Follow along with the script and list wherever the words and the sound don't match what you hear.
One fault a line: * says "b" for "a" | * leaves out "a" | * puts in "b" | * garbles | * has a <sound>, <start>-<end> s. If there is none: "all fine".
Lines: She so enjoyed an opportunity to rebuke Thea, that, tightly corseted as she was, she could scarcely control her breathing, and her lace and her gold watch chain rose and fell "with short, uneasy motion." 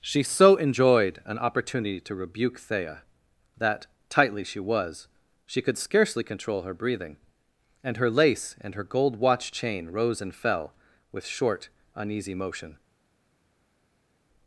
* leaves out "corseted as"